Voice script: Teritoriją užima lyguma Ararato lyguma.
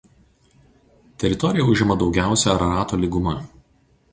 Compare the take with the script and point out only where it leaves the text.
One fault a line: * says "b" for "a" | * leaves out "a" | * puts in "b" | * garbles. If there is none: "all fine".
* says "daugiausia" for "lyguma"